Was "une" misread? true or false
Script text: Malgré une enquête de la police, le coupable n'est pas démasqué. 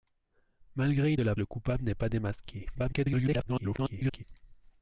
true